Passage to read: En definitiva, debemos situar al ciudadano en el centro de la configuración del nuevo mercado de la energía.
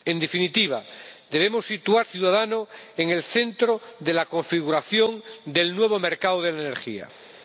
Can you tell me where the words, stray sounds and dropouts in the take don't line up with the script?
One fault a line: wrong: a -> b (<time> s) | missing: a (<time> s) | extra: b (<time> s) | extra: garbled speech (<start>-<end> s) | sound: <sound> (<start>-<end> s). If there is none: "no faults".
missing: al (2.0 s)